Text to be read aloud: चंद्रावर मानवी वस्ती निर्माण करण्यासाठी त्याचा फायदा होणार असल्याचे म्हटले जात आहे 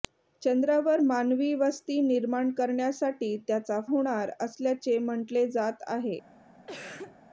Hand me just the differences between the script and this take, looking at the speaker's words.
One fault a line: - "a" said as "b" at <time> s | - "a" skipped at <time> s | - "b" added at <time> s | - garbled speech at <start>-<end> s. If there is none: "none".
- "फायदा" skipped at 3.8 s